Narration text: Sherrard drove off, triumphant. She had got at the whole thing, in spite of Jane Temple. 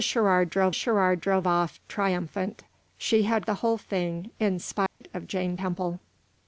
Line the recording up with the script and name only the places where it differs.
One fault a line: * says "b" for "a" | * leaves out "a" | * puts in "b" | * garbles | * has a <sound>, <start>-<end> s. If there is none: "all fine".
* puts in "sherrard drove"
* leaves out "got at"
* has a dropout, 4.9-5.0 s